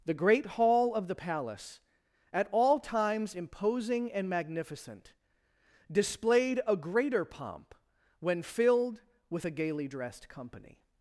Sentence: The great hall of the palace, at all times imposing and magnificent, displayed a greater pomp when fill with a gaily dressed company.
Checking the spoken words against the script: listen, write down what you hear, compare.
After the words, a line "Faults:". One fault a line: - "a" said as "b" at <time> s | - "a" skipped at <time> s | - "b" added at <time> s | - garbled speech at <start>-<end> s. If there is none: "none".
The great hall of the palace, at all times imposing and magnificent, displayed a greater pomp when filled with a gaily dressed company.
Faults:
- "fill" said as "filled" at 8.4 s